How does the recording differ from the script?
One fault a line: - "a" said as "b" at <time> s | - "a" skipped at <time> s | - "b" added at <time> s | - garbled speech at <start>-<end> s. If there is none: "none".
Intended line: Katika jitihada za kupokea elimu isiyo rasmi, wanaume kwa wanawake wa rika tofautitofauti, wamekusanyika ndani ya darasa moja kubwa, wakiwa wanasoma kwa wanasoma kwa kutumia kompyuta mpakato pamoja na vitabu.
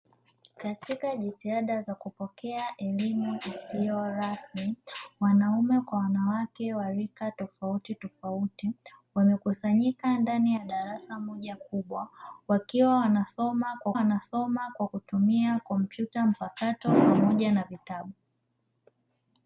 none